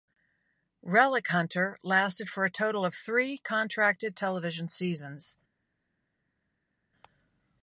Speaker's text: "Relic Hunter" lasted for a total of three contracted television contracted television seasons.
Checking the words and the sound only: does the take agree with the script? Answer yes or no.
no